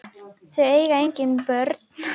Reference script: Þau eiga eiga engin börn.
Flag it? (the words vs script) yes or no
yes